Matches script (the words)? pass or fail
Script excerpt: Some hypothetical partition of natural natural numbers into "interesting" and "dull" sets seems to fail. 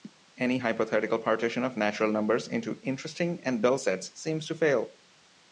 fail